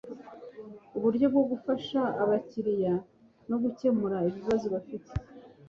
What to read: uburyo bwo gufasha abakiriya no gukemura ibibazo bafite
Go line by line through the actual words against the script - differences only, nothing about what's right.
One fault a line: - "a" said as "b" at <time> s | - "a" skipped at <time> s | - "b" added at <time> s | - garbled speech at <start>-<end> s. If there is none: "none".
none